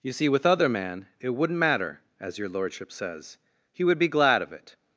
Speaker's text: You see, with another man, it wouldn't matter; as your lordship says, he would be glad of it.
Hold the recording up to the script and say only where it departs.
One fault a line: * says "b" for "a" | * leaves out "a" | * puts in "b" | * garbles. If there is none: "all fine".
* says "other" for "another"